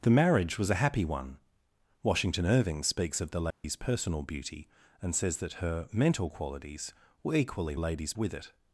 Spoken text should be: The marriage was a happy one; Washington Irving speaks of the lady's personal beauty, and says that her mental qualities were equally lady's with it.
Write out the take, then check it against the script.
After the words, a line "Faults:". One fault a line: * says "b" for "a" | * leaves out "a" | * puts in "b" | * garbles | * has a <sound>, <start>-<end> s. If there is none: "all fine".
The marriage was a happy one; Washington Irving speaks of the lady's personal beauty, and says that her mental qualities were equally lady's with it.
Faults:
* has a dropout, 3.5-3.6 s